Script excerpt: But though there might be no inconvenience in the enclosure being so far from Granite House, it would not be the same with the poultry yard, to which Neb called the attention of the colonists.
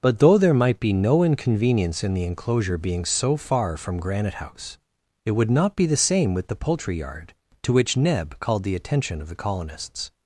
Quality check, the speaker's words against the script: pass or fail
pass